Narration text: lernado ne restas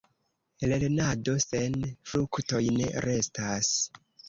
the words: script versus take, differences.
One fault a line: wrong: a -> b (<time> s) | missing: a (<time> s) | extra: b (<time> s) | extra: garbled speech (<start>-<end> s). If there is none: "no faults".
extra: sen fruktoj (1.4 s)